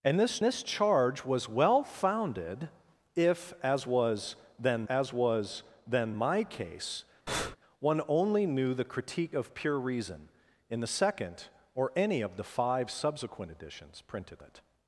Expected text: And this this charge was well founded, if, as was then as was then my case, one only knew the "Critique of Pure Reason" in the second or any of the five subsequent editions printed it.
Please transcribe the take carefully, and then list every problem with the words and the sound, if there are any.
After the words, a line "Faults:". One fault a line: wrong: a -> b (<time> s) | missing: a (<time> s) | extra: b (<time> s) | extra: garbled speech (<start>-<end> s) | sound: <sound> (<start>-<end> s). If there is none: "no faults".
And this this charge was well founded, if, as was then as was then my case, one only knew the "Critique of Pure Reason" in the second or any of the five subsequent editions printed it.
Faults:
sound: breath (7.3-7.6 s)